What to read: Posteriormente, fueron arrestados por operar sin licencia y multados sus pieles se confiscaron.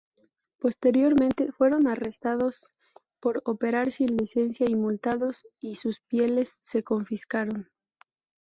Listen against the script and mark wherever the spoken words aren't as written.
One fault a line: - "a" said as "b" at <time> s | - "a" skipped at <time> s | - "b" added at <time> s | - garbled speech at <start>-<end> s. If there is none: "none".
- "y" added at 5.6 s